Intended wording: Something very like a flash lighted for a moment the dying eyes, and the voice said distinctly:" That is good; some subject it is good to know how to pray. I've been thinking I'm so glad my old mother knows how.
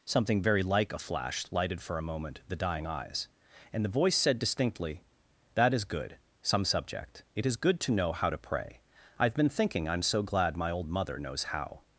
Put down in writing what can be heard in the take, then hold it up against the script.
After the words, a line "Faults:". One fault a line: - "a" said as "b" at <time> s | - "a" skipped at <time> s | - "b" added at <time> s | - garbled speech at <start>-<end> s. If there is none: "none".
Something very like a flash lighted for a moment the dying eyes, and the voice said distinctly:" That is good; some subject it is good to know how to pray. I've been thinking I'm so glad my old mother knows how.
Faults:
none